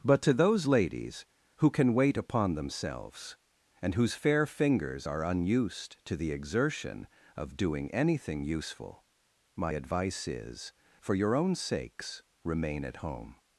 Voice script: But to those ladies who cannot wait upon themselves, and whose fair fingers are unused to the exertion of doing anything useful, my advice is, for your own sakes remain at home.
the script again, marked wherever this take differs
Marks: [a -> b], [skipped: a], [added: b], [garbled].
But to those ladies who [cannot -> can] wait upon themselves, and whose fair fingers are unused to the exertion of doing anything useful, my advice is, for your own sakes remain at home.